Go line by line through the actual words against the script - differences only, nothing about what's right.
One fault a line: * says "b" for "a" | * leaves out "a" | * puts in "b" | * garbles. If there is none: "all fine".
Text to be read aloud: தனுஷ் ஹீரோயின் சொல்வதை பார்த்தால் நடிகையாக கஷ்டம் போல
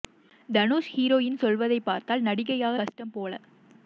all fine